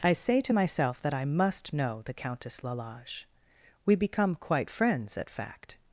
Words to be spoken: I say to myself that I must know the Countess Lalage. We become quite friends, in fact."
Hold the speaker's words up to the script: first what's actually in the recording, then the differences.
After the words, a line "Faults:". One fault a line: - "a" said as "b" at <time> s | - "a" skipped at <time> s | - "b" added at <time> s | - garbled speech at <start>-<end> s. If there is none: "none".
I say to myself that I must know the Countess Lalage. We become quite friends, at fact."
Faults:
- "in" said as "at" at 5.2 s